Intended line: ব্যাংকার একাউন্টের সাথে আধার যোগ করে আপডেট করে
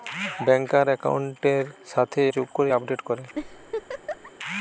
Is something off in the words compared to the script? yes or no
yes